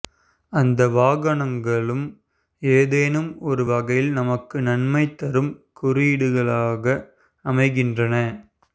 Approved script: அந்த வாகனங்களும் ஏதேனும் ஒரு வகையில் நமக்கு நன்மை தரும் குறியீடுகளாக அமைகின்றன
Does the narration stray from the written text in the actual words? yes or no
no